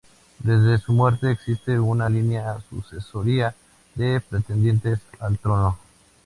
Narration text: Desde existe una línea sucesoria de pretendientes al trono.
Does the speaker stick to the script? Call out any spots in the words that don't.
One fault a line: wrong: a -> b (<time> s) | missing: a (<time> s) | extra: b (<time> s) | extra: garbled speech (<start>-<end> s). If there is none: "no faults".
extra: su muerte (0.8 s)